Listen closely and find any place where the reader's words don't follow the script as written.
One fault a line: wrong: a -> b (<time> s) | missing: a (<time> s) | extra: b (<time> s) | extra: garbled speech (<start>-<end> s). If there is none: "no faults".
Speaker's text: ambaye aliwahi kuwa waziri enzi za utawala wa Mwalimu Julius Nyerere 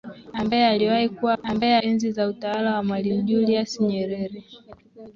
wrong: waziri -> ambaye (1.4 s)